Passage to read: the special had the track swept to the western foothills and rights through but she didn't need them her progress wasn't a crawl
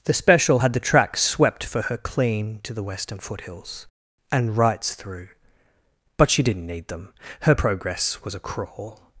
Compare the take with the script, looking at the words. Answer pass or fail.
fail